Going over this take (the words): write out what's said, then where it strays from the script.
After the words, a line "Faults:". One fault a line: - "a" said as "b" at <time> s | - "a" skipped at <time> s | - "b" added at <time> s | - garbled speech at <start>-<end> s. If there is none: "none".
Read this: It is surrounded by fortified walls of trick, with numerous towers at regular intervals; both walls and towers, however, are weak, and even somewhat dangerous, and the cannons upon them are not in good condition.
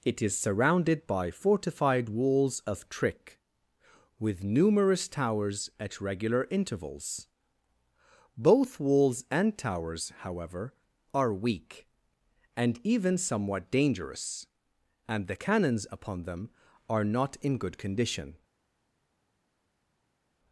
It is surrounded by fortified walls of trick, with numerous towers at regular intervals; both walls and towers, however, are weak, and even somewhat dangerous, and the cannons upon them are not in good condition.
Faults:
none